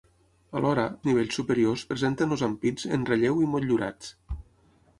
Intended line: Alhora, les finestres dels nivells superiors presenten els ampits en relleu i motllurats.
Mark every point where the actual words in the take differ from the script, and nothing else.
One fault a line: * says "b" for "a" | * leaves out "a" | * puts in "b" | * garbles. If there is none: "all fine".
* leaves out "les finestres dels"